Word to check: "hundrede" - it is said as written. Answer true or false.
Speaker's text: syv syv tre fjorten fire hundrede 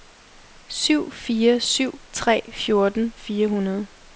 true